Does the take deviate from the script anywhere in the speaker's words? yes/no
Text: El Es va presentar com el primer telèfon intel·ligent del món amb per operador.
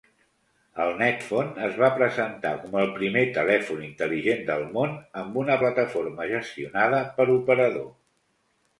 yes